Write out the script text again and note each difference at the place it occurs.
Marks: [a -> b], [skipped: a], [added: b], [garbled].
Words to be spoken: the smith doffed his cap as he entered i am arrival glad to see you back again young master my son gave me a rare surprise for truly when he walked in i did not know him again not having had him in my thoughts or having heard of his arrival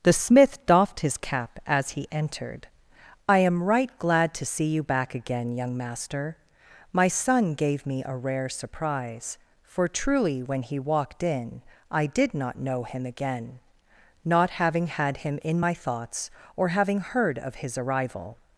the smith doffed his cap as he entered i am [arrival -> right] glad to see you back again young master my son gave me a rare surprise for truly when he walked in i did not know him again not having had him in my thoughts or having heard of his arrival